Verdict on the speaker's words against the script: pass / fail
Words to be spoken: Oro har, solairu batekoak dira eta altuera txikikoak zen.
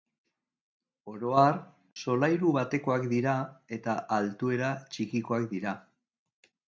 fail